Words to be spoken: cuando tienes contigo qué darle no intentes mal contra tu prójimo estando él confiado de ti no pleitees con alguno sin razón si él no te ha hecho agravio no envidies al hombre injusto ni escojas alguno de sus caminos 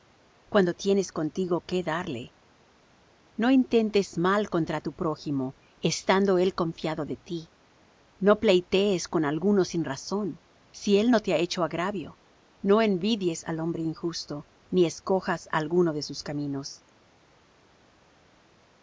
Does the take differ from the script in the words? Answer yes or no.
no